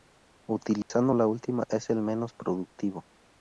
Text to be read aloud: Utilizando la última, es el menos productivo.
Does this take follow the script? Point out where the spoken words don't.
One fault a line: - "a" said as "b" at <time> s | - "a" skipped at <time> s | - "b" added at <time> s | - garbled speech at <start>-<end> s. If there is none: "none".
none